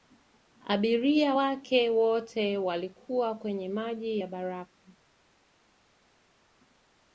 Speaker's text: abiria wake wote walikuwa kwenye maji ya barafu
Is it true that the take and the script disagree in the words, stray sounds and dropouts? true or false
false